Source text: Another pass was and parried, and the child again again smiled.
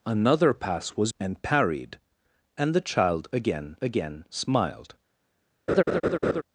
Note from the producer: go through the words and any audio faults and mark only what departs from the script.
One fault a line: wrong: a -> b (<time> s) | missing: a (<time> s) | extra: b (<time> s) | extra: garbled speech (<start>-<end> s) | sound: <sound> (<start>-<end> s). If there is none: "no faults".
sound: laugh (5.7-6.4 s)